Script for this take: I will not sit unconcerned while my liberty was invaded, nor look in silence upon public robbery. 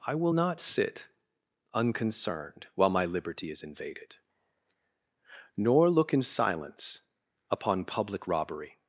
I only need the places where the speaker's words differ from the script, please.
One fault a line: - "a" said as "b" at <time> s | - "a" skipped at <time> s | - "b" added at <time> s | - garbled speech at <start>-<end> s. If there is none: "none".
- "was" said as "is" at 3.5 s